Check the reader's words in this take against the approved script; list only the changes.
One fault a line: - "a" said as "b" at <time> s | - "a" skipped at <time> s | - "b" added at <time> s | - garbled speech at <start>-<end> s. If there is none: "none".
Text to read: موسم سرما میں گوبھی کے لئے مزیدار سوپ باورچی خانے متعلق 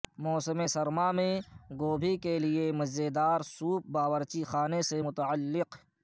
- "سے" added at 4.9 s